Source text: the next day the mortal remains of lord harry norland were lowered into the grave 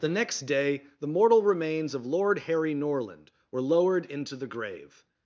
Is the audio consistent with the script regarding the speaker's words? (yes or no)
yes